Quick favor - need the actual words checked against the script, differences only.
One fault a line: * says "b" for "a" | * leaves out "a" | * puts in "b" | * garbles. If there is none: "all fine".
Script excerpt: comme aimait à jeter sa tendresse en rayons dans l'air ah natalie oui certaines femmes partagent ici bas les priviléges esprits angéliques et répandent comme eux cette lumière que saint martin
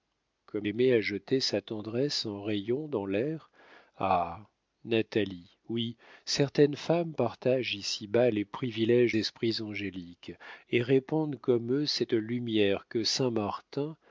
all fine